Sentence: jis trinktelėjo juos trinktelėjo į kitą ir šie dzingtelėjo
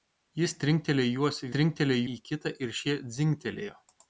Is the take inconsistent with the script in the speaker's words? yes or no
no